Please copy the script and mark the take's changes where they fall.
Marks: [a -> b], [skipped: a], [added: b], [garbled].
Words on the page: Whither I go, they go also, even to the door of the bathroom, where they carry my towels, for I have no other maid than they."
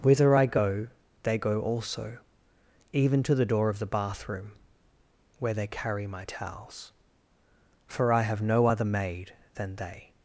Whither I go, they go also, even to the door of the bathroom, where they carry my towels, for I have no other maid than they."